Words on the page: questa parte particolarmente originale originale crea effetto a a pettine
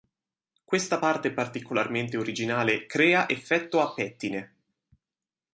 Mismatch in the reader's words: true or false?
true